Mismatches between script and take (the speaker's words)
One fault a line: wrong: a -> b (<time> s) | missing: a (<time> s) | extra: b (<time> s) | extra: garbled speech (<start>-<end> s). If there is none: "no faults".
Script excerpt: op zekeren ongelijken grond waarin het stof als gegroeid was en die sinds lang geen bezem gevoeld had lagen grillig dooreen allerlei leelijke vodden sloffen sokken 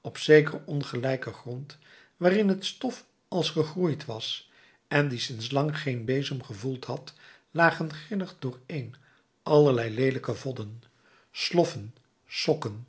no faults